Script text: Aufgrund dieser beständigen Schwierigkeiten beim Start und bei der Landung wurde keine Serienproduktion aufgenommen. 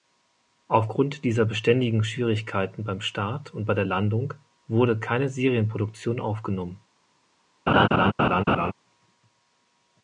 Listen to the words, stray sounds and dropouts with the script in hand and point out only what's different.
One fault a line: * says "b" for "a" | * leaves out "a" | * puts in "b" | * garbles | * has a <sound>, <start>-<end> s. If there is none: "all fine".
* has a laugh, 7.7-8.7 s